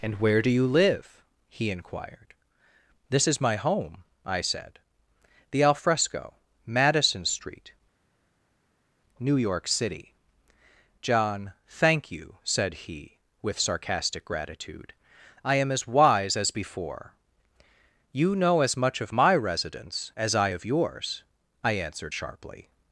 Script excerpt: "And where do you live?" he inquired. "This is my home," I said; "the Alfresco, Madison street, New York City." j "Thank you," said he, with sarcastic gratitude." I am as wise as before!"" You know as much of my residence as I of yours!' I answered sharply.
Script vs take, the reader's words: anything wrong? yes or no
yes